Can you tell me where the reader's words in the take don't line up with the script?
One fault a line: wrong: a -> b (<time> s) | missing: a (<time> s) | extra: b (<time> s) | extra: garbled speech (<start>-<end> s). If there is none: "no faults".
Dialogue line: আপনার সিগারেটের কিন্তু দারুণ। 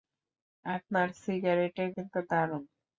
no faults